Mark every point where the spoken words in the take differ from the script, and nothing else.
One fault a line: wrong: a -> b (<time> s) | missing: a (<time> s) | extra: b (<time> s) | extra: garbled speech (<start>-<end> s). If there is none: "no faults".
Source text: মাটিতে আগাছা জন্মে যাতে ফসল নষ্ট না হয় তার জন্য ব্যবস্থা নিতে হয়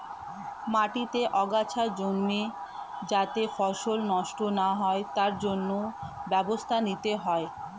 no faults